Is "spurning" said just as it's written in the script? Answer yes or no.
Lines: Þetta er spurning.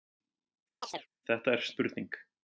yes